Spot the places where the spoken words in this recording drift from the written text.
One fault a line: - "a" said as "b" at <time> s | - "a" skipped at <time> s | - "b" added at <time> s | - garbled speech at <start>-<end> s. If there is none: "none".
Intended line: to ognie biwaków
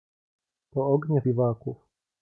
none